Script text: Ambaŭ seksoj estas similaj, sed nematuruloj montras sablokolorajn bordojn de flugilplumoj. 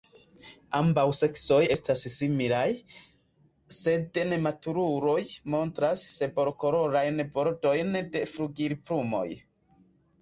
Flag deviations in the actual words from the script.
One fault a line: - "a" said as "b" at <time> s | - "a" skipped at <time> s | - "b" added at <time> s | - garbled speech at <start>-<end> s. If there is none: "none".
none